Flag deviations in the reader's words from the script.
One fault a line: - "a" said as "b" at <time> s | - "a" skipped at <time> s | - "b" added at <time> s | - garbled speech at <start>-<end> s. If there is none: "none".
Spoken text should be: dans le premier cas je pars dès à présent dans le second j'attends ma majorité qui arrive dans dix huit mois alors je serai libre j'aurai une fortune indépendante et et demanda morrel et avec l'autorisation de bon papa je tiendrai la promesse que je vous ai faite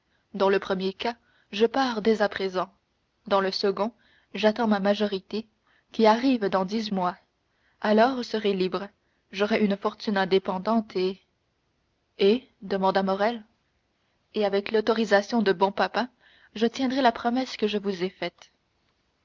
- "huit" skipped at 6.9 s
- "je" skipped at 8.2 s